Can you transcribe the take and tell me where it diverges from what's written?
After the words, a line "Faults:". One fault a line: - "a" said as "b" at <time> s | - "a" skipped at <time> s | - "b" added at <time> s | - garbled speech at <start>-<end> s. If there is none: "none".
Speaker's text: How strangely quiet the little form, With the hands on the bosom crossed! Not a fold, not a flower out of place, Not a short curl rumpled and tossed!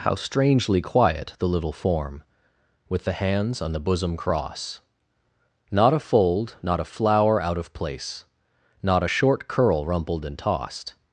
How strangely quiet the little form, With the hands on the bosom cross! Not a fold, not a flower out of place, Not a short curl rumpled and tossed!
Faults:
- "crossed" said as "cross" at 4.2 s